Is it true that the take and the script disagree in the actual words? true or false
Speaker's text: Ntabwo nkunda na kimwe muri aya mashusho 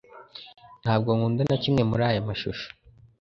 false